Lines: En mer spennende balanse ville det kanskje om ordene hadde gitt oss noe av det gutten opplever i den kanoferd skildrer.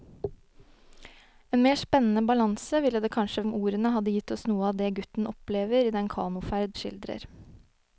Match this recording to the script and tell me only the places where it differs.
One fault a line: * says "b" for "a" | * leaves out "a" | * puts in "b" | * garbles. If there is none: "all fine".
all fine